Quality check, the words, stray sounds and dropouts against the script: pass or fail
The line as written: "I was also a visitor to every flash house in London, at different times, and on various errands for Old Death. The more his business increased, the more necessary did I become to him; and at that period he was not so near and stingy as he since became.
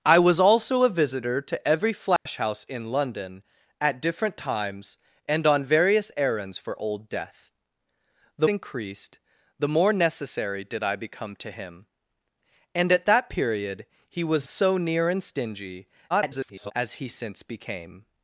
fail